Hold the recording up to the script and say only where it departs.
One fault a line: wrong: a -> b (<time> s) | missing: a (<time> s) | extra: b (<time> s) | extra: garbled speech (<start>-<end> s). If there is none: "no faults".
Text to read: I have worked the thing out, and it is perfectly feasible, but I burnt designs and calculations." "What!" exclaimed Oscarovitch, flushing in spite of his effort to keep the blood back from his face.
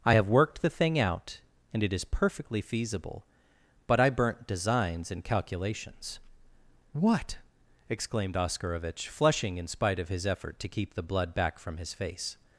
no faults